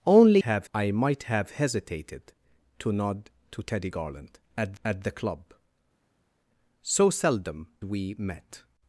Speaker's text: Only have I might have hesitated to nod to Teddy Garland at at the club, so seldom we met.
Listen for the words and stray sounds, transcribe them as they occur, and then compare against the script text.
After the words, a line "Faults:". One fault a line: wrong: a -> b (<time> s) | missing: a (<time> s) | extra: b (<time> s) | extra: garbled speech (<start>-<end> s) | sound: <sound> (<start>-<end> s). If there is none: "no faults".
Only have I might have hesitated to nod to Teddy Garland at at the club, so seldom we met.
Faults:
no faults